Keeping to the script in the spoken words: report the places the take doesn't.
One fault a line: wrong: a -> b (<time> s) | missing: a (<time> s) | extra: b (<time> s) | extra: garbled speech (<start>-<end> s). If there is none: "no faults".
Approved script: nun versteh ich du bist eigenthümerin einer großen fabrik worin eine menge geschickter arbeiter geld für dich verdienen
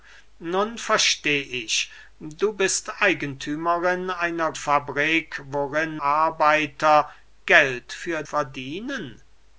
missing: großen (4.5 s)
missing: eine menge geschickter (6.0 s)
missing: dich (8.2 s)